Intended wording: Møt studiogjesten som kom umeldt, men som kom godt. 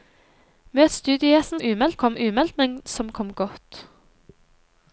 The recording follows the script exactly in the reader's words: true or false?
false